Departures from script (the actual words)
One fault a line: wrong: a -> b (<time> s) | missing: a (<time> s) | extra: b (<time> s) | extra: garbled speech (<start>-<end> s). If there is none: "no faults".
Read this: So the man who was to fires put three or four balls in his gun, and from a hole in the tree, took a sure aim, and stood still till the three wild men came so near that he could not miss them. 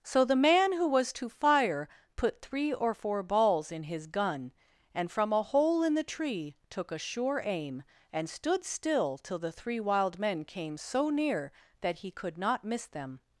wrong: fires -> fire (1.3 s)